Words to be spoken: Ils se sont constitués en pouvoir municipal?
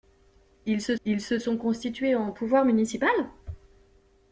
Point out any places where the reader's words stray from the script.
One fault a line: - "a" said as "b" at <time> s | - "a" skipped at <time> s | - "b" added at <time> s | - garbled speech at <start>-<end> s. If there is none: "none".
- "ils se" added at 1.0 s